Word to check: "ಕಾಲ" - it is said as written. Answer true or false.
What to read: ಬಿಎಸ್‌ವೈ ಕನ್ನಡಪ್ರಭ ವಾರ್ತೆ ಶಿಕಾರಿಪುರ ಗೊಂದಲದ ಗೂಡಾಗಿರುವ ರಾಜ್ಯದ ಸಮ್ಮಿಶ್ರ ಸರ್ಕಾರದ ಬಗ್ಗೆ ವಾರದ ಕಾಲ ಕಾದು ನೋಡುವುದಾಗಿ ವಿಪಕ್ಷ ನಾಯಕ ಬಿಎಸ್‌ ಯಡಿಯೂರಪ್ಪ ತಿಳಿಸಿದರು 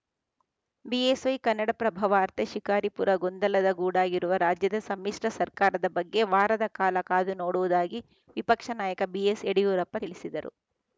true